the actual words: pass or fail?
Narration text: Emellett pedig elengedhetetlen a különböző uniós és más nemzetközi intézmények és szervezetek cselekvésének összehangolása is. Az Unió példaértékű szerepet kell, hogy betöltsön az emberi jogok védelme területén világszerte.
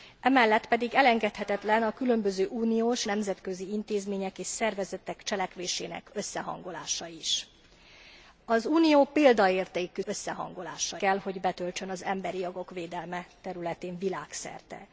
fail